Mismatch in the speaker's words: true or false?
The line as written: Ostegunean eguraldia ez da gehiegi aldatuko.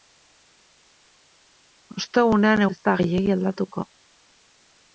true